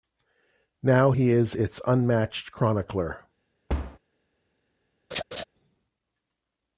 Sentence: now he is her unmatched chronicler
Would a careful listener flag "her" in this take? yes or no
yes